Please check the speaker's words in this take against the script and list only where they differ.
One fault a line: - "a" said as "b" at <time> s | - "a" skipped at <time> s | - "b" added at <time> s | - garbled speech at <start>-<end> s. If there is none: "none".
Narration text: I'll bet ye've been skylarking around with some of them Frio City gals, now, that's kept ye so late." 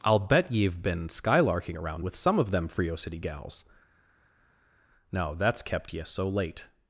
none